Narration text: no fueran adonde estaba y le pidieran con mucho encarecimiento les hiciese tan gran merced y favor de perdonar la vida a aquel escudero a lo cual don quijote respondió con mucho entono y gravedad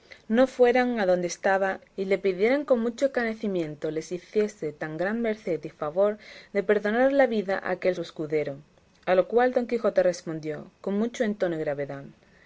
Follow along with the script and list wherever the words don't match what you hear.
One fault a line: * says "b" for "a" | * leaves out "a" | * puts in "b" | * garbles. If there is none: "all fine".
all fine